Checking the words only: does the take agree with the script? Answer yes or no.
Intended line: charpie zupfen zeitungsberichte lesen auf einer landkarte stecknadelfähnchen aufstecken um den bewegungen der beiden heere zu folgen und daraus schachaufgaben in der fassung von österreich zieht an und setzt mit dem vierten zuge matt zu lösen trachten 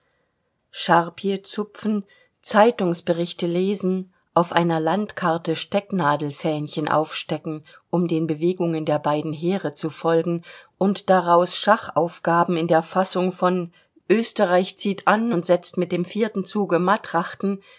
no